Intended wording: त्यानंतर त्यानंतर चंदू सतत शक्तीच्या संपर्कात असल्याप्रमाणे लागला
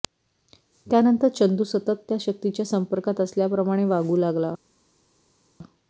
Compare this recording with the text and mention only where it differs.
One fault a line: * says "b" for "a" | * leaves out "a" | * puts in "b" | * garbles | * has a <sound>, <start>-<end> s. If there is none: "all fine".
* leaves out "त्यानंतर"
* puts in "त्या"
* puts in "वागू"